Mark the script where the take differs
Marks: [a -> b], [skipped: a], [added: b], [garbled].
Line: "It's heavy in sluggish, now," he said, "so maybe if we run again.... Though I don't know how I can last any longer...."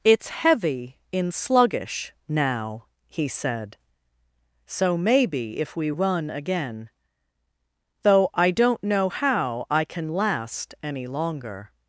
"It's heavy in sluggish, now," he said, "so maybe if we run again.... Though I don't know how I can last any longer...."